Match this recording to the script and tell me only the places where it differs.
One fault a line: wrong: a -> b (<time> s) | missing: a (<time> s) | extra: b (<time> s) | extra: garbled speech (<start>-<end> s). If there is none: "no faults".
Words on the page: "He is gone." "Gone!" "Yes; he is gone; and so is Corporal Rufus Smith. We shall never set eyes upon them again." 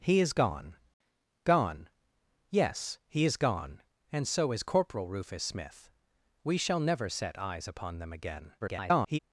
extra: garbled speech (8.6-9.2 s)